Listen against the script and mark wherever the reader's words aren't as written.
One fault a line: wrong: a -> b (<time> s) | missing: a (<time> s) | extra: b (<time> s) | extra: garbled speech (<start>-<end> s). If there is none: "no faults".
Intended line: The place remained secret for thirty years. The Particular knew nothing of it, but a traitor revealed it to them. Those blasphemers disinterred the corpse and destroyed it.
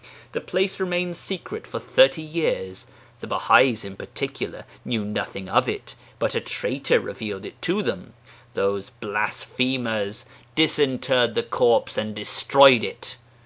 extra: Baha'is in (3.3 s)